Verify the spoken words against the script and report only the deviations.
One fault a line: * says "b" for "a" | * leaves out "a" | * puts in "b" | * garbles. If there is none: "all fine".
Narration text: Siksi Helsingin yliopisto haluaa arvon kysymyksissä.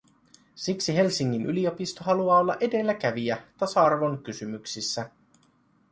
* puts in "olla edelläkävijä tasa"